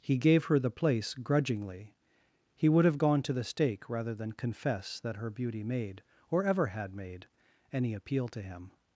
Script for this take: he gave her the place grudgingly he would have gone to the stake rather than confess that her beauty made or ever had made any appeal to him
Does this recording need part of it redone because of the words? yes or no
no